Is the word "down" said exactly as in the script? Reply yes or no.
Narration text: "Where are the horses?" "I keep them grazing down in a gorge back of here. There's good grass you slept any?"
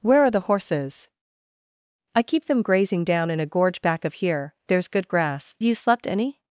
yes